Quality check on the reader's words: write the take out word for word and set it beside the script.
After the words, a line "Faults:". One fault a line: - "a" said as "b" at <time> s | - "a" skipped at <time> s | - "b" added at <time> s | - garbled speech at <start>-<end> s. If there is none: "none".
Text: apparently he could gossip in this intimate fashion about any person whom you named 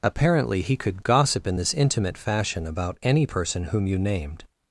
apparently he could gossip in this intimate fashion about any person whom you named
Faults:
none